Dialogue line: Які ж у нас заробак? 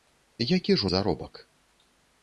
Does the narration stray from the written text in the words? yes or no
yes